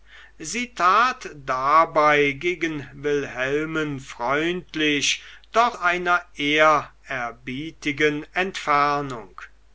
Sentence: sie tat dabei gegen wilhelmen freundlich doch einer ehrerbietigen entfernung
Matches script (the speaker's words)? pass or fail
pass